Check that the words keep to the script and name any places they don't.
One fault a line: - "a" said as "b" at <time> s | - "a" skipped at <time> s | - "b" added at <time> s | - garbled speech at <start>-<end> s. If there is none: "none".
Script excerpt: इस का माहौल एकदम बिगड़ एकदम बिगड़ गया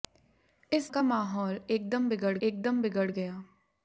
none